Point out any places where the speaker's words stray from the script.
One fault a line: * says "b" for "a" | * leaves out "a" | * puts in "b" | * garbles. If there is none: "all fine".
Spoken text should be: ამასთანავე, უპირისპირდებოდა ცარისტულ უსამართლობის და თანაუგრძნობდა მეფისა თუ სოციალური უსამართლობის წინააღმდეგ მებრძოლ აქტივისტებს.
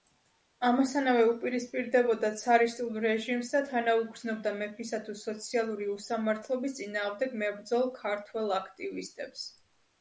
* says "რეჟიმს" for "უსამართლობის"
* puts in "ქართველ"